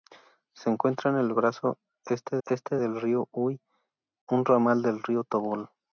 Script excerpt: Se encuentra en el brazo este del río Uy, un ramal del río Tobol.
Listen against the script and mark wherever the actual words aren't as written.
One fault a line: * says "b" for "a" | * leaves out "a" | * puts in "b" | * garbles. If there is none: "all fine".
* puts in "este"